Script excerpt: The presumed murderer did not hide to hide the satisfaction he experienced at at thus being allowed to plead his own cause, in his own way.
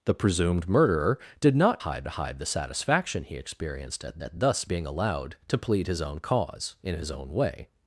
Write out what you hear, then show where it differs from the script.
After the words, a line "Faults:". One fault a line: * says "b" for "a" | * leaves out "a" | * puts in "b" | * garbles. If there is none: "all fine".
The presumed murderer did not hide to hide the satisfaction he experienced at at thus being allowed to plead his own cause, in his own way.
Faults:
all fine